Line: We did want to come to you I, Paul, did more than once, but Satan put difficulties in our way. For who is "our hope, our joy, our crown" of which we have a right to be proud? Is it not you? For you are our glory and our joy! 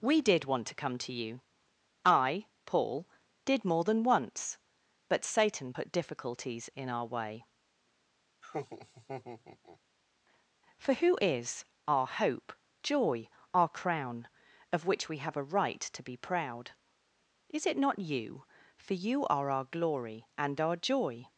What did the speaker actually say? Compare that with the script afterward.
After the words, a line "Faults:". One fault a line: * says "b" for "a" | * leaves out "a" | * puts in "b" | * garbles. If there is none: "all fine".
We did want to come to you I, Paul, did more than once, but Satan put difficulties in our way. For who is "our hope, joy, our crown" of which we have a right to be proud? Is it not you? For you are our glory and our joy!
Faults:
* leaves out "our"